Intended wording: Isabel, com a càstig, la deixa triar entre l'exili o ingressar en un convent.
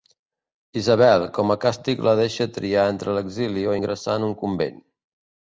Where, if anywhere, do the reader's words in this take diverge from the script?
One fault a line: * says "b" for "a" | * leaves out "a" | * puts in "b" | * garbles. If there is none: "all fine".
all fine